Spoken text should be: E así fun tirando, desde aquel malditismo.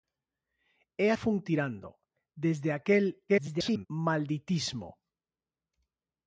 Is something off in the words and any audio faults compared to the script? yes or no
yes